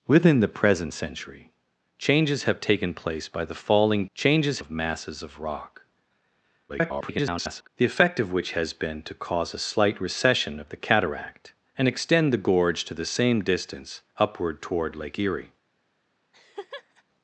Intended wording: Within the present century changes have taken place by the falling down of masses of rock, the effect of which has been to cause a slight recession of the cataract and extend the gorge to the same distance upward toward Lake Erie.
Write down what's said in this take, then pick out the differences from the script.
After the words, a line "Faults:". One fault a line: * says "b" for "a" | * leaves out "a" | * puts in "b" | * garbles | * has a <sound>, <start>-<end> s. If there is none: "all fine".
Within the present century changes have taken place by the falling changes of masses of rock, [garbled] the effect of which has been to cause a slight recession of the cataract and extend the gorge to the same distance upward toward Lake Erie.
Faults:
* says "changes" for "down"
* garbles
* has a laugh, 16.3-17.0 s